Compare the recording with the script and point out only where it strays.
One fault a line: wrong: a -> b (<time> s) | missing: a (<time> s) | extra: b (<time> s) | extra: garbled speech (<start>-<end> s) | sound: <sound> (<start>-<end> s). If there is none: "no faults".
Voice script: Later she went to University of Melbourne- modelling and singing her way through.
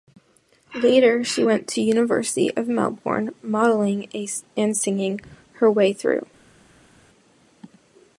no faults